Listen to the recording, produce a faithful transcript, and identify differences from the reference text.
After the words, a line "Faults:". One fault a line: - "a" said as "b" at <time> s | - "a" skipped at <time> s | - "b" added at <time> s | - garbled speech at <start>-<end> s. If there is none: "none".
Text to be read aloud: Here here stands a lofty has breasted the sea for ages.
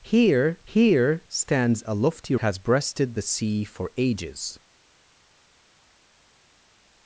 Here here stands a lofty has breasted the sea for ages.
Faults:
none